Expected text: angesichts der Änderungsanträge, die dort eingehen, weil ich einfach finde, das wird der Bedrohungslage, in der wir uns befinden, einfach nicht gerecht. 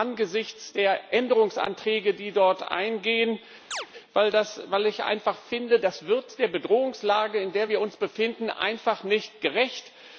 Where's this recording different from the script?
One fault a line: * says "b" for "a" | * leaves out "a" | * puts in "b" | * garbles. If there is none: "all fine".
all fine